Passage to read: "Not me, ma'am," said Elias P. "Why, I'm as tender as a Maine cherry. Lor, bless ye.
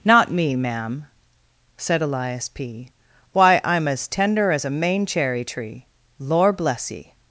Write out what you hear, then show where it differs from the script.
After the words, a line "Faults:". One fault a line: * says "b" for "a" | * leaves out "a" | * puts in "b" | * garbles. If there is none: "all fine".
"Not me, ma'am," said Elias P. "Why, I'm as tender as a Maine cherry tree. Lor, bless ye.
Faults:
* puts in "tree"